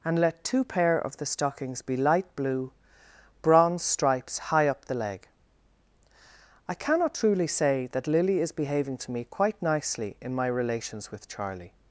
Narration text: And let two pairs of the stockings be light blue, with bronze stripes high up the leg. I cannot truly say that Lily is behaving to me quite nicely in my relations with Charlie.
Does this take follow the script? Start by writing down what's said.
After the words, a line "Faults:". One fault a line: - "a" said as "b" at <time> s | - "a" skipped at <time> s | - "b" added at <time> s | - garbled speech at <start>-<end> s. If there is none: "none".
And let two pair of the stockings be light blue, bronze stripes high up the leg. I cannot truly say that Lily is behaving to me quite nicely in my relations with Charlie.
Faults:
- "pairs" said as "pair" at 0.6 s
- "with" skipped at 2.7 s